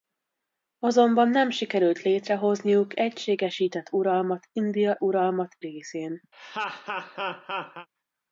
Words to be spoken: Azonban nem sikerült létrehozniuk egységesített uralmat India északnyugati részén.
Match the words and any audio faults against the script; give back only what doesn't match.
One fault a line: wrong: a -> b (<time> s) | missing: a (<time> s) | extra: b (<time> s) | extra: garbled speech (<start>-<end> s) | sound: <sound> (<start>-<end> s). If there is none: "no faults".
wrong: északnyugati -> uralmat (5.0 s)
sound: laugh (6.3-7.9 s)